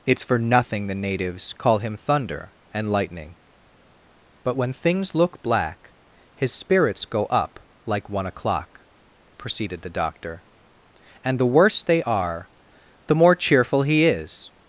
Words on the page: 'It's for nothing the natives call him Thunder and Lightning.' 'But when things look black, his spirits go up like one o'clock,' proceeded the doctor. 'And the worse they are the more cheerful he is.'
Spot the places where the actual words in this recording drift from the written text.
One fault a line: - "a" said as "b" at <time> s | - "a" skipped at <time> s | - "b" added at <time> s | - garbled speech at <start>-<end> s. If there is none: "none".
none